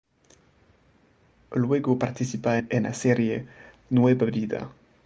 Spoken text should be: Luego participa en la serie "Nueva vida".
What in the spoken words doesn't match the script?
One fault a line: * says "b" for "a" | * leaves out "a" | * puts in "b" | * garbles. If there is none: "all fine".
all fine